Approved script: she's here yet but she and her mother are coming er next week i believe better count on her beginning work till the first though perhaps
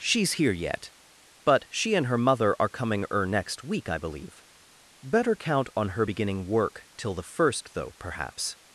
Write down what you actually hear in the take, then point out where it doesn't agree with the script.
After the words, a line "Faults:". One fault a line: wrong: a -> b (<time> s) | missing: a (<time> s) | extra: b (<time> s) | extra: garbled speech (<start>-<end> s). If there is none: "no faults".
she's here yet but she and her mother are coming er next week i believe better count on her beginning work till the first though perhaps
Faults:
no faults